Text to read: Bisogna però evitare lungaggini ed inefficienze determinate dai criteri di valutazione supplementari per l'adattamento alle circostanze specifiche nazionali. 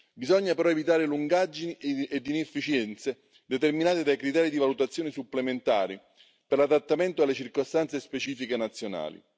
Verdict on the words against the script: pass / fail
pass